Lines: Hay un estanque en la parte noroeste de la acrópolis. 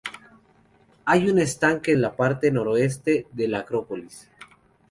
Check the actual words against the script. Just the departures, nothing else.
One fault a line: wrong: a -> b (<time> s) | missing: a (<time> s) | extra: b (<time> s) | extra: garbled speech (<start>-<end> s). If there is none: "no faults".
no faults